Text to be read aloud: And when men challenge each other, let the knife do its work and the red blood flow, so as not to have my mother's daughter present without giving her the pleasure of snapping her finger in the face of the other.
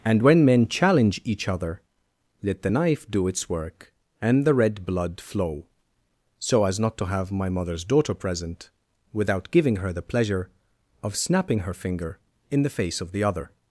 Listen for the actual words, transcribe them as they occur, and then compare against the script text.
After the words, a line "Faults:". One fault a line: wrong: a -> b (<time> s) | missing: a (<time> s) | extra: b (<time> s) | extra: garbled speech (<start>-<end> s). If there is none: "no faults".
And when men challenge each other, let the knife do its work and the red blood flow, so as not to have my mother's daughter present without giving her the pleasure of snapping her finger in the face of the other.
Faults:
no faults